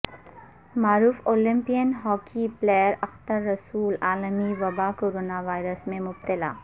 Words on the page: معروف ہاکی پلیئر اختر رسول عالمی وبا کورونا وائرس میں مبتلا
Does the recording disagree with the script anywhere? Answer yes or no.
yes